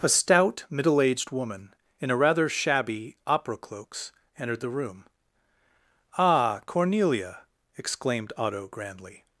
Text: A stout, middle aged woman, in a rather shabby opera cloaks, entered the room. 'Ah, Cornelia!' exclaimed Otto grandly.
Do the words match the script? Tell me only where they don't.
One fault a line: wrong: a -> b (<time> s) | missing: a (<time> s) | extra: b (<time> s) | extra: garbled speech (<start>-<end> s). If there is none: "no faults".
no faults